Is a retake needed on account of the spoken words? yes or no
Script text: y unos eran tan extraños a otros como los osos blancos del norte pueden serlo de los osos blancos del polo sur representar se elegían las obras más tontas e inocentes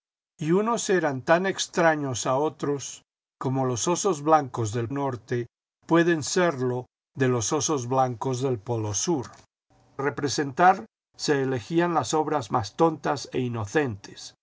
no